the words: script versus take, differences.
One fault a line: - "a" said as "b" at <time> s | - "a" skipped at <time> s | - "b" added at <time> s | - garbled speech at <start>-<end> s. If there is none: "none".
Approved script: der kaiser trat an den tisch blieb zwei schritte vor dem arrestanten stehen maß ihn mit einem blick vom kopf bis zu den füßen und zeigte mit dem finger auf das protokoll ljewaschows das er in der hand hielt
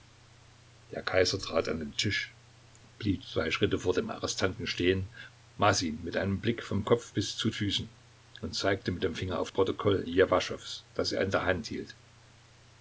- "den" skipped at 7.5 s
- "das" skipped at 9.5 s